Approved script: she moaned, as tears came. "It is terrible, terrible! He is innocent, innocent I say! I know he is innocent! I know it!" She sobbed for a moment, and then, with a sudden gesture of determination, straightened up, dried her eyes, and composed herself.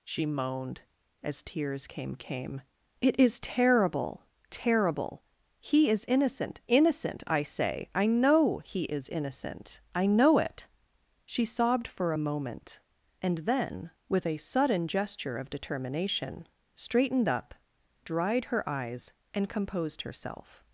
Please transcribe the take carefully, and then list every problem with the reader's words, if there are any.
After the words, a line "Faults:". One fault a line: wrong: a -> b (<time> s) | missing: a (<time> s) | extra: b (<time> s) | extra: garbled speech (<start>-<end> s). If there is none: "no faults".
she moaned, as tears came came. "It is terrible, terrible! He is innocent, innocent I say! I know he is innocent! I know it!" She sobbed for a moment, and then, with a sudden gesture of determination, straightened up, dried her eyes, and composed herself.
Faults:
extra: came (2.1 s)